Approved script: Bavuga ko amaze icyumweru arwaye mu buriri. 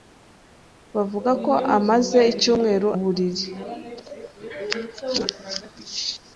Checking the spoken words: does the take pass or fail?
fail